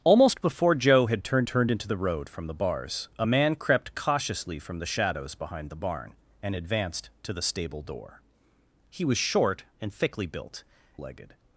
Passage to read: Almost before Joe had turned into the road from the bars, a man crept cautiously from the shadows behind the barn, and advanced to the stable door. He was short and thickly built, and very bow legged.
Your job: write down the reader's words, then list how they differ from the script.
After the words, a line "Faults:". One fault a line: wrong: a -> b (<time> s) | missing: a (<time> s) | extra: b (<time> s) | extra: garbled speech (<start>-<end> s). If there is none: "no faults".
Almost before Joe had turned turned into the road from the bars, a man crept cautiously from the shadows behind the barn, and advanced to the stable door. He was short and thickly built, legged.
Faults:
extra: turned (1.5 s)
missing: and very bow (10.6 s)